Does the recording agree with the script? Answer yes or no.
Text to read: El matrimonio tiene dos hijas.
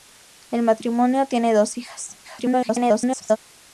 no